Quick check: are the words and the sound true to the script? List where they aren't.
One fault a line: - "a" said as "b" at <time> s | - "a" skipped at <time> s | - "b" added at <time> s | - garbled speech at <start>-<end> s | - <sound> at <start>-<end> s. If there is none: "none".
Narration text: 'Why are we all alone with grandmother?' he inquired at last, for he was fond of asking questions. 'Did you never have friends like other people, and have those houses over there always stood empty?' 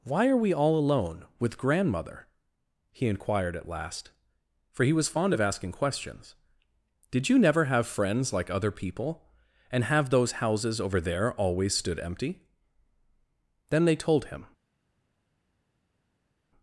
- "Then they told him" added at 13.7 s